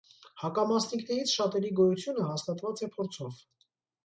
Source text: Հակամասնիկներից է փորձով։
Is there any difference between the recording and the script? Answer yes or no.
yes